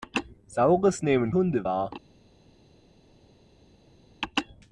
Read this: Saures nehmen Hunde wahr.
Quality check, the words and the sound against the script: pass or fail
pass